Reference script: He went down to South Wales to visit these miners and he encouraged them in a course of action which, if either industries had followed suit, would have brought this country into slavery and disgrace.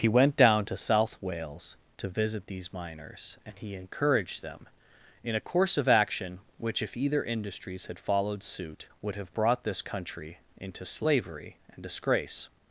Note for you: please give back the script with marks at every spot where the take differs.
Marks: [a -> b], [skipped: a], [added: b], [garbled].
He went down to South Wales to visit these miners and he encouraged them in a course of action which, if either industries had followed suit, would have brought this country into slavery and disgrace.